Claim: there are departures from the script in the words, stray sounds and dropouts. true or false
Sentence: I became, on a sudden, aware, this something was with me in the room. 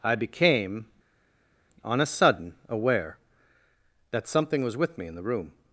true